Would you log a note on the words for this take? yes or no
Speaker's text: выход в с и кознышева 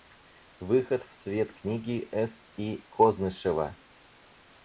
yes